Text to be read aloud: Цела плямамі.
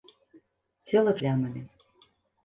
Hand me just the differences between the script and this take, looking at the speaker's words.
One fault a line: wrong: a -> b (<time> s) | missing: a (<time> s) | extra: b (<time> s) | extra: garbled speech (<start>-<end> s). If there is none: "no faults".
no faults